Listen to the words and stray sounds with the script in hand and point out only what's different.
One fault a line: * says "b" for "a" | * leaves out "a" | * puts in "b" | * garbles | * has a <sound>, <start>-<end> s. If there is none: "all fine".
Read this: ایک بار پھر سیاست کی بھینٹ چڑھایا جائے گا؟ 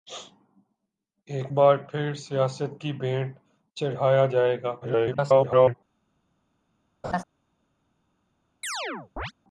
* garbles
* has a laugh, 7.0-7.2 s
* has a chirp, 8.6-9.3 s